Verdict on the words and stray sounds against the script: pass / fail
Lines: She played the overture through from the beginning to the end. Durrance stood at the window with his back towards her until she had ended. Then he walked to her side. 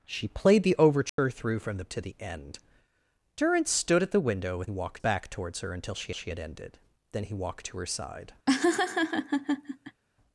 fail